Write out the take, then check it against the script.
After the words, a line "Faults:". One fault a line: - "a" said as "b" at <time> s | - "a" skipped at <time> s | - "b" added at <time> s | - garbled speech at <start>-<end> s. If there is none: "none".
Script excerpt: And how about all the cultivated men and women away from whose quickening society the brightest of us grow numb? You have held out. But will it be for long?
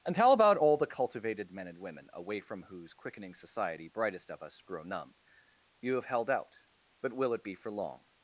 And how about all the cultivated men and women away from whose quickening society brightest of us grow numb? You have held out. But will it be for long?
Faults:
- "the" skipped at 3.9 s